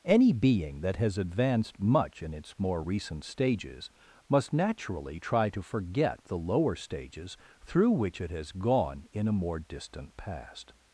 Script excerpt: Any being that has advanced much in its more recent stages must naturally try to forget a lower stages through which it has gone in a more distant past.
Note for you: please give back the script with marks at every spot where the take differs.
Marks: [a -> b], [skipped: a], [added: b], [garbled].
Any being that has advanced much in its more recent stages must naturally try to forget [a -> the] lower stages through which it has gone in a more distant past.